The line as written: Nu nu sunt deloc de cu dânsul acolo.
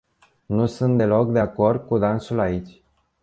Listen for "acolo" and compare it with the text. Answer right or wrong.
wrong